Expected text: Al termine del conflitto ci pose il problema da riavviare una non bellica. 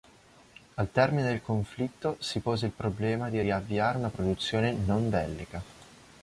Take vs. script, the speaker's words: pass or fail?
fail